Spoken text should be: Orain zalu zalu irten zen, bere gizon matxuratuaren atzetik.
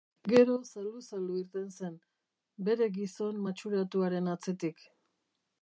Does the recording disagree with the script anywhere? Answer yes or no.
yes